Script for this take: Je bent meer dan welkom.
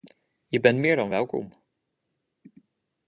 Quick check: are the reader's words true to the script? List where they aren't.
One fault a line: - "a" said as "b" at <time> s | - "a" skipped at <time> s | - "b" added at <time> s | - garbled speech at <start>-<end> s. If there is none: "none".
none